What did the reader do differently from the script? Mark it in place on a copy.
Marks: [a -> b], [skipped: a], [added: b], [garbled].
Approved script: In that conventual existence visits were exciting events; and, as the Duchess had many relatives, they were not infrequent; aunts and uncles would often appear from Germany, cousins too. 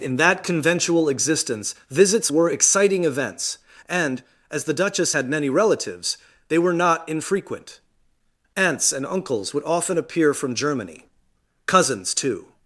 In that conventual existence visits were exciting events; and, as the Duchess had many relatives, they were not infrequent; aunts and uncles would often appear from Germany, cousins too.